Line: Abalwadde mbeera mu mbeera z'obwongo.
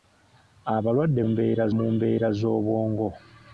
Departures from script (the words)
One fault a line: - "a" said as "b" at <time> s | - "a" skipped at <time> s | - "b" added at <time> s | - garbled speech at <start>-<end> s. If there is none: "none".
none